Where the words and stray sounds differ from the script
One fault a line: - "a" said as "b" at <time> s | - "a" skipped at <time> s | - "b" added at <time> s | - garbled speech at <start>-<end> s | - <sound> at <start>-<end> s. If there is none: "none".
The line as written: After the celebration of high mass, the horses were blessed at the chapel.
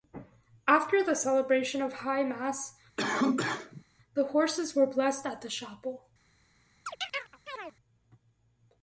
- cough at 3.0-3.8 s
- chirp at 6.9-7.8 s